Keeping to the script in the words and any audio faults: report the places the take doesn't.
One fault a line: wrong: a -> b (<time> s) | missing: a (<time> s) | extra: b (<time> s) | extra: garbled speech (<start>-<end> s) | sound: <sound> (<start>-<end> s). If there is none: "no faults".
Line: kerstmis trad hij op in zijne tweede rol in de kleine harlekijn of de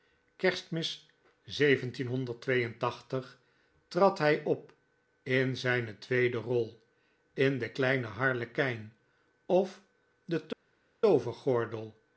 no faults